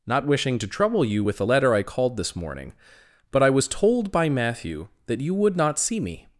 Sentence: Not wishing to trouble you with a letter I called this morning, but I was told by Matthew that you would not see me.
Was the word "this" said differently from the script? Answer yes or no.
no